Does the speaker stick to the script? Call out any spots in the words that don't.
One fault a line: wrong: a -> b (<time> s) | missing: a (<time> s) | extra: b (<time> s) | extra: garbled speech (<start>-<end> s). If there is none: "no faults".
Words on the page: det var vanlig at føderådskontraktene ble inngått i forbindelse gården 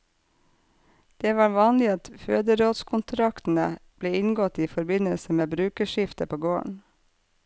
extra: med brukerskifte på (5.4 s)